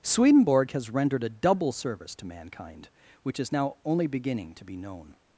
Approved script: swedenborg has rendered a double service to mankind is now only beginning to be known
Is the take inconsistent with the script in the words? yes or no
yes